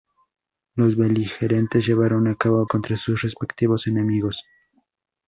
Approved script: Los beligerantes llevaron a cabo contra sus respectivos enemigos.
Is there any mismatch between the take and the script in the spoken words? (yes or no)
no